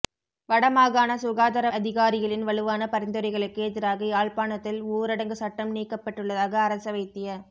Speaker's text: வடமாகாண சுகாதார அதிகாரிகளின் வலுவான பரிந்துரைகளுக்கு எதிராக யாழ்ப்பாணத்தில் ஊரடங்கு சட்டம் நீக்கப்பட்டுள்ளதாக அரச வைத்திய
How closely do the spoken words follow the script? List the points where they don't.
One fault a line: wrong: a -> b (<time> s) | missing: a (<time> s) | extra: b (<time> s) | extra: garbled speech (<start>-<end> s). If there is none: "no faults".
no faults